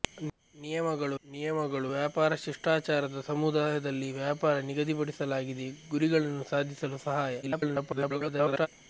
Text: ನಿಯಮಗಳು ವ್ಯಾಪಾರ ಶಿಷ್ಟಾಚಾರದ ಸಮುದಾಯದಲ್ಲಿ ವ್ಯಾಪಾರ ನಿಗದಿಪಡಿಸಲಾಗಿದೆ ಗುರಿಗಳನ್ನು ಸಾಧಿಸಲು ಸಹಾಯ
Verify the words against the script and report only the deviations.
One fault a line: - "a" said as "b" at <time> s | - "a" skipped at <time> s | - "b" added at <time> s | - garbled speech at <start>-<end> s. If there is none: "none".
- "ನಿಯಮಗಳು" added at 1.2 s
- garbled speech at 7.4-8.7 s